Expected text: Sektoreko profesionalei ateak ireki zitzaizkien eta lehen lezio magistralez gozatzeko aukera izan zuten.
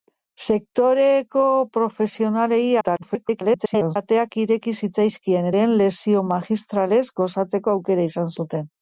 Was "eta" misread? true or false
true